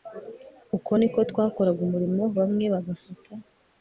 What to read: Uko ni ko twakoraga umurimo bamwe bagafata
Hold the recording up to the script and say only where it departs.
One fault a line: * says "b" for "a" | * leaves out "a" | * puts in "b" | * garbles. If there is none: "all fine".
all fine